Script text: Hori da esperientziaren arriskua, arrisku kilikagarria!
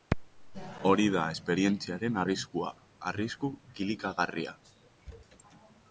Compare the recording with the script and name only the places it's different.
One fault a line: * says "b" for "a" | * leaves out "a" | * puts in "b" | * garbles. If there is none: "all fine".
all fine